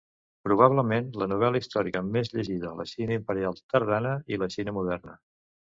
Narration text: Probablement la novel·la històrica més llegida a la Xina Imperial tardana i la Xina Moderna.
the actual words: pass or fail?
pass